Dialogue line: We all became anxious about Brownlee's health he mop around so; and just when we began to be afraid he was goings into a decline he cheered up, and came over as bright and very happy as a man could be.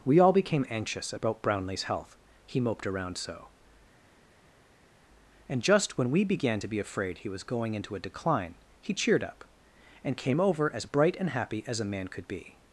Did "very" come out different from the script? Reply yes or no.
yes